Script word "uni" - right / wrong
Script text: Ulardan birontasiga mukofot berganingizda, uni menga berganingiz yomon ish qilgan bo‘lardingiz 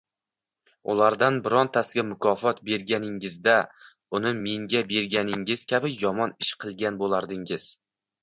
right